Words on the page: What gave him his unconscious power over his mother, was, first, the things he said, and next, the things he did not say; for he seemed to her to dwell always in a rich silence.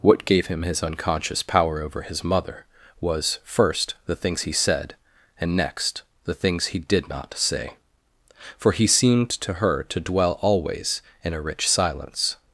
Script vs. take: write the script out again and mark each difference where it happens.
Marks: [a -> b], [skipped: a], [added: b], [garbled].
What gave him his unconscious power over his mother, was, first, the things he said, and next, the things he did not say; for he seemed to her to dwell always in a rich silence.